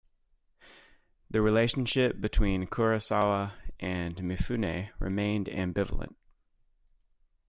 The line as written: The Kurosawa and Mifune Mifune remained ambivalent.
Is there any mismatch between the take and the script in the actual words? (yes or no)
yes